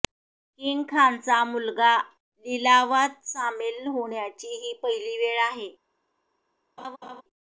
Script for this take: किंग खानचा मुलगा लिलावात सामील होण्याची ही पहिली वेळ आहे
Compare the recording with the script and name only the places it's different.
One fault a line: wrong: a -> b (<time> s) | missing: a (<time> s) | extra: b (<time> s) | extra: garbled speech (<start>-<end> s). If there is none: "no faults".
no faults